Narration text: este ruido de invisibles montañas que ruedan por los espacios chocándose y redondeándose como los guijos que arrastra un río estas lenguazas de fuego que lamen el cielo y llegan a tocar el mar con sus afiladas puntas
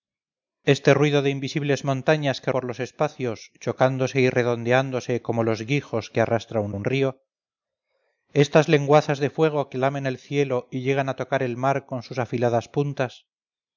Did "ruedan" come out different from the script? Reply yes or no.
yes